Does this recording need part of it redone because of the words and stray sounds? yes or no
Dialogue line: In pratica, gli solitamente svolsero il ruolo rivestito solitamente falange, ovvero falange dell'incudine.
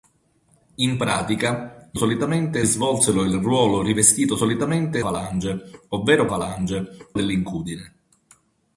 no